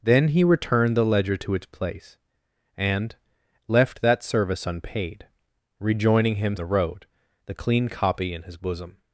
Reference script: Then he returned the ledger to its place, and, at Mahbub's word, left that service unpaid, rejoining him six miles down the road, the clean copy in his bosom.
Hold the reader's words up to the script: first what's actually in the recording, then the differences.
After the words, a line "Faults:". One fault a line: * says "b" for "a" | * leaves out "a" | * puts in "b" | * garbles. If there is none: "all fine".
Then he returned the ledger to its place, and, left that service unpaid, rejoining him the road, the clean copy in his bosom.
Faults:
* leaves out "at Mahbub's word"
* leaves out "six miles down"